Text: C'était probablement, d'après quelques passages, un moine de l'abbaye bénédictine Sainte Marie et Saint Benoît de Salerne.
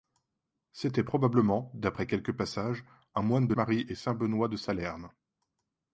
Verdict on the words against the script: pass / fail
fail